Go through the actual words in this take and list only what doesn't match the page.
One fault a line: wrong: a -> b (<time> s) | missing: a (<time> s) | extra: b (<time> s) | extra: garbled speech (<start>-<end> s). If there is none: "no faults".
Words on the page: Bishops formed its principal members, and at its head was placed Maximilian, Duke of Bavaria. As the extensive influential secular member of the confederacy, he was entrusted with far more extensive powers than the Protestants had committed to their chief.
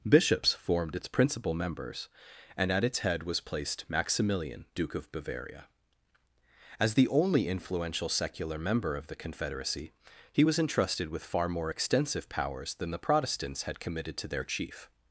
wrong: extensive -> only (7.1 s)